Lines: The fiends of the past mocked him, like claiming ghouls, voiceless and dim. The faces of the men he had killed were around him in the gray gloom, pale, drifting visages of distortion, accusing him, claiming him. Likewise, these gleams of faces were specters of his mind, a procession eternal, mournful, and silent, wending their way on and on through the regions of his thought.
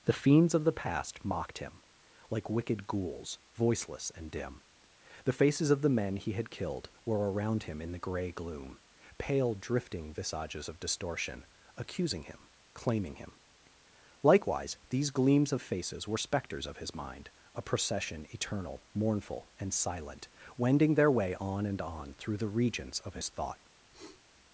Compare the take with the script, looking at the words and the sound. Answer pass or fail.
fail